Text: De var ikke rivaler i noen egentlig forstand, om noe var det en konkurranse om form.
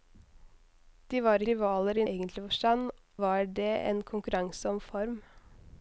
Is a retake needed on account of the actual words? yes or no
yes